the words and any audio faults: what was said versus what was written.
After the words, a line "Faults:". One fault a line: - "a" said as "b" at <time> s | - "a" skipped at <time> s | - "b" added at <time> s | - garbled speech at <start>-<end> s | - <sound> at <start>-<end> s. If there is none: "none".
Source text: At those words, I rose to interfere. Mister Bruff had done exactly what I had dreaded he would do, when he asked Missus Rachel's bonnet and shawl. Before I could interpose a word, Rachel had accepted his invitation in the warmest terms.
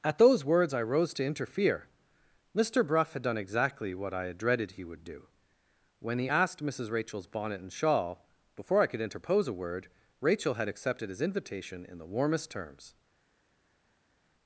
At those words, I rose to interfere. Mister Bruff had done exactly what I had dreaded he would do, when he asked Missus Rachel's bonnet and shawl. Before I could interpose a word, Rachel had accepted his invitation in the warmest terms.
Faults:
none